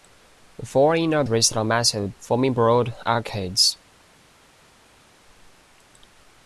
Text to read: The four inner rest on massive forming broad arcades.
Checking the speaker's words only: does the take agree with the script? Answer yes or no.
yes